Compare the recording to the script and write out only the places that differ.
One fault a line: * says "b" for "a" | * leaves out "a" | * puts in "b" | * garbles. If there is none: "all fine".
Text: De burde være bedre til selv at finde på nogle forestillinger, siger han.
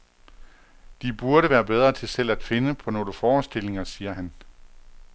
all fine